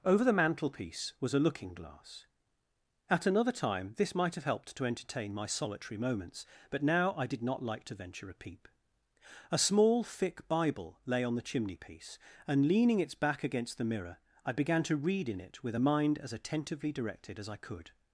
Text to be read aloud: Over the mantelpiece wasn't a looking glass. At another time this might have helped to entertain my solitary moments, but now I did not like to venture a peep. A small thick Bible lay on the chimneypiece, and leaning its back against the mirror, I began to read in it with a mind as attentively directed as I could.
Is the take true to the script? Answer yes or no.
no